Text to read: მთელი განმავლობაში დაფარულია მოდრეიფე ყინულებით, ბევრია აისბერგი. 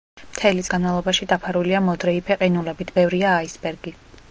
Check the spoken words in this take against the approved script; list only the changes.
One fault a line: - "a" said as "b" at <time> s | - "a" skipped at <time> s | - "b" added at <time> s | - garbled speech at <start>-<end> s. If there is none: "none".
none